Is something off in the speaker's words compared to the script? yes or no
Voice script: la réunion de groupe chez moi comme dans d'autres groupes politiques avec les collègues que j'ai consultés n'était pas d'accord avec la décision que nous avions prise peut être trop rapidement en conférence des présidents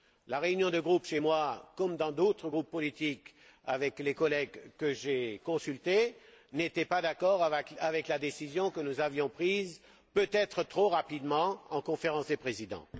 no